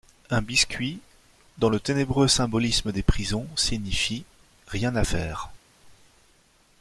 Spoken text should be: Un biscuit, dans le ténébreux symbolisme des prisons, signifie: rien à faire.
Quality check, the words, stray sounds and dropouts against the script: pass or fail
pass